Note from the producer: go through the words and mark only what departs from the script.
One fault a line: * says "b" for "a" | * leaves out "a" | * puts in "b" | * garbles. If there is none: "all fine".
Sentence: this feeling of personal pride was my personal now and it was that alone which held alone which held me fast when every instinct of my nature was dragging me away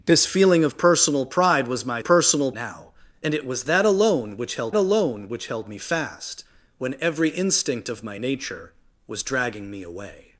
all fine